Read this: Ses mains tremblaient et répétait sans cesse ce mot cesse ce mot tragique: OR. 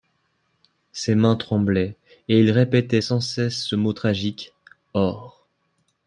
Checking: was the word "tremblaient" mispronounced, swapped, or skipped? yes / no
no